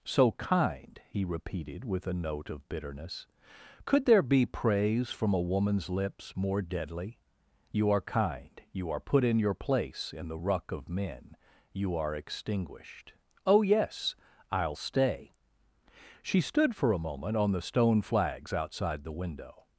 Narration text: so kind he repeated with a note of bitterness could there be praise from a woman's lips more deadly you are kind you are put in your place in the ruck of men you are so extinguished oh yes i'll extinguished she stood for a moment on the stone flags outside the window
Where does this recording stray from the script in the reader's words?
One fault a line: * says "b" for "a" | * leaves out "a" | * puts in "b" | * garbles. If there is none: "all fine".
* leaves out "so"
* says "stay" for "extinguished"